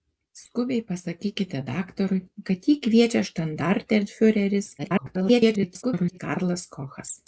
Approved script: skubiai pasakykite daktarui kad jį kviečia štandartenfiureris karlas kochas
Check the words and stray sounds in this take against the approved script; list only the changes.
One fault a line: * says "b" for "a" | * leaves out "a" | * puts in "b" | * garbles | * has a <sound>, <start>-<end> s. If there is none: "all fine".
* garbles